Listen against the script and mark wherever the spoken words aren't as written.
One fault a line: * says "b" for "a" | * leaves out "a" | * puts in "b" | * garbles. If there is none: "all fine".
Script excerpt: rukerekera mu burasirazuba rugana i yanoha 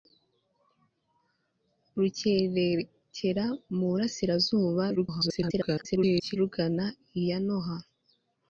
* garbles